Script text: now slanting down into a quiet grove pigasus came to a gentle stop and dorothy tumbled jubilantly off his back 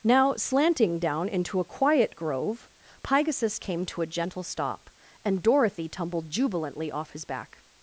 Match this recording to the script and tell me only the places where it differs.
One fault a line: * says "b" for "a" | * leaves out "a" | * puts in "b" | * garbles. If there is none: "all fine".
all fine